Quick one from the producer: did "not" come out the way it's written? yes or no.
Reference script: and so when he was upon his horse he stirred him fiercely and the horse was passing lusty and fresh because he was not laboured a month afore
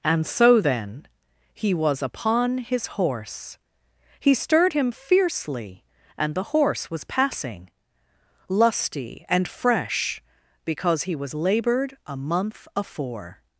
no